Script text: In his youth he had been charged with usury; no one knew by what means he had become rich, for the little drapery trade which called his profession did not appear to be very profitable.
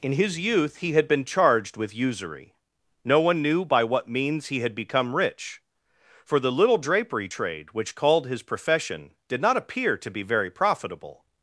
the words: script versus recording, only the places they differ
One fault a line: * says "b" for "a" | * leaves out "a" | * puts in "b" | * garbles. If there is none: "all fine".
all fine